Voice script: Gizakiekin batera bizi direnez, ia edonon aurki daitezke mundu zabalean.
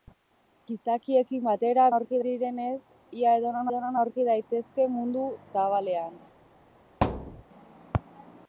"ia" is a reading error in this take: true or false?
false